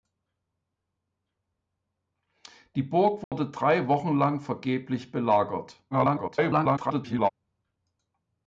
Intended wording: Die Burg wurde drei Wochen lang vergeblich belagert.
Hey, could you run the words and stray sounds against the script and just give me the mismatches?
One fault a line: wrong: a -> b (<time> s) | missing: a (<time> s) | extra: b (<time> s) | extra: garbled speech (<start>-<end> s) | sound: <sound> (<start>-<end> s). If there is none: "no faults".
sound: dropout (3.2-3.3 s)
extra: garbled speech (5.9-7.3 s)